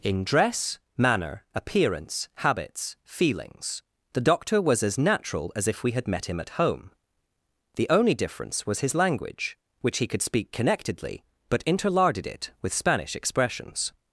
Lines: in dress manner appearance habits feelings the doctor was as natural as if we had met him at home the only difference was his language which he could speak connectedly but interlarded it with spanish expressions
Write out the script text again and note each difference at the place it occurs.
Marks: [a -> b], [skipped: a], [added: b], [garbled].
in dress manner appearance habits feelings the doctor was as natural as if we had met him at home the only difference was his language which he could speak connectedly but interlarded it with spanish expressions